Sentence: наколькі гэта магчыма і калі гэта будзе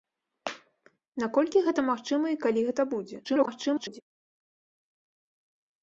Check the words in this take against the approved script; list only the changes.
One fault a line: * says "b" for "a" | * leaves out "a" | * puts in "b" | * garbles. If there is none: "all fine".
* garbles